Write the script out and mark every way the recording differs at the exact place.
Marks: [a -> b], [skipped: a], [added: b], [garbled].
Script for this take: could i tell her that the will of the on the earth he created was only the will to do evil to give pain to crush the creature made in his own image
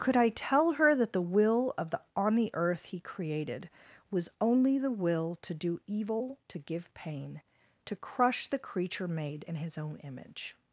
could i tell her that the will of the on the earth he created was only the will to do evil to give pain to crush the creature made in his own image